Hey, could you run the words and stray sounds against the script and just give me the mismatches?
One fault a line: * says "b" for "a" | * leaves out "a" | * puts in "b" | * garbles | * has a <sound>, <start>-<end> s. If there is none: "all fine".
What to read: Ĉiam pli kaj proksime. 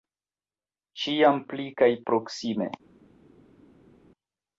all fine